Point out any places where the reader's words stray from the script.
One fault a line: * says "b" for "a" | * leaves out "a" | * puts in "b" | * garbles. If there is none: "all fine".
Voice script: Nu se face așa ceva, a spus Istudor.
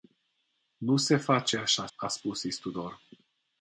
* leaves out "ceva"